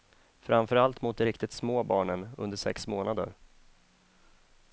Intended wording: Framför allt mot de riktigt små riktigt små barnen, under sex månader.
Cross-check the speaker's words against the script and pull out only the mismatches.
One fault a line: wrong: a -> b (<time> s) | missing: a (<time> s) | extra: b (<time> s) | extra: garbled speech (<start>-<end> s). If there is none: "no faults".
missing: riktigt små (1.8 s)